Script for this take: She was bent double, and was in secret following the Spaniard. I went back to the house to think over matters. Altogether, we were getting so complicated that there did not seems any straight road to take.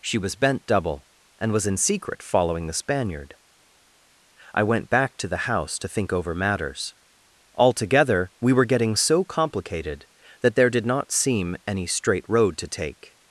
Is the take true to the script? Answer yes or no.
no